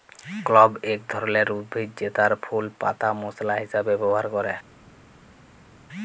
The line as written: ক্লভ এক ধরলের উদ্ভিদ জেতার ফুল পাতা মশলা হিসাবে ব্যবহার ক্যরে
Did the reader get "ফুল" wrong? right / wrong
right